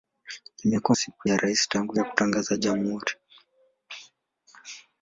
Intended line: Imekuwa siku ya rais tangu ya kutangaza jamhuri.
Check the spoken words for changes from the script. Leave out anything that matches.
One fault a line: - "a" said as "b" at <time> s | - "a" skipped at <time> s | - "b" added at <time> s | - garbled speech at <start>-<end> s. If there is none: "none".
none